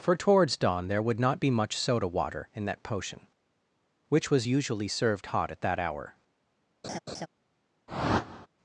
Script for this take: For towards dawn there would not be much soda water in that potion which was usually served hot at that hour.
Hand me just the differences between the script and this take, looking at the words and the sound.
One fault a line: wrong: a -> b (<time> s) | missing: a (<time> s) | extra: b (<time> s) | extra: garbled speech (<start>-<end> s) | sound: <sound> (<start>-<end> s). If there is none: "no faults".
sound: laugh (6.8-7.3 s)
sound: whoosh (7.9-8.5 s)